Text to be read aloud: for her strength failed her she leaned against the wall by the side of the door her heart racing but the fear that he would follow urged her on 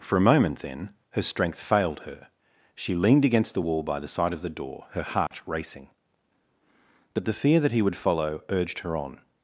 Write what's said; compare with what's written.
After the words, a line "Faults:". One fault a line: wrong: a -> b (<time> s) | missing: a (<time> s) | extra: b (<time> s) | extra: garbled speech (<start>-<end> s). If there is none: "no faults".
for a moment then her strength failed her she leaned against the wall by the side of the door her heart racing but the fear that he would follow urged her on
Faults:
extra: a moment then (0.2 s)